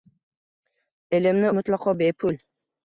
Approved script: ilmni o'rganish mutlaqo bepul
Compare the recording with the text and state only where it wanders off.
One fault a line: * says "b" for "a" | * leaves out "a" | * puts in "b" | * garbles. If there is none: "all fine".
* leaves out "o'rganish"